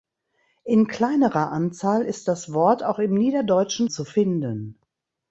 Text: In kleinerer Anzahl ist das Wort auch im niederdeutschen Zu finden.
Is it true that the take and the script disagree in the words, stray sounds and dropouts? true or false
false